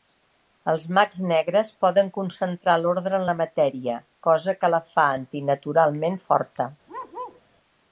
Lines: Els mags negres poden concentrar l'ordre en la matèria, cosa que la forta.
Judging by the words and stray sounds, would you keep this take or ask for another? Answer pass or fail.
fail